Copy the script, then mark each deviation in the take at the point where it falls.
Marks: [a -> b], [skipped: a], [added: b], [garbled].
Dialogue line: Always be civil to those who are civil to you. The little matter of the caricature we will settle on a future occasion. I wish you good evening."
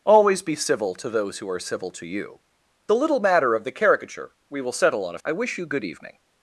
Always be civil to those who are civil to you. The little matter of the caricature we will settle on a [skipped: future occasion.] I wish you good evening."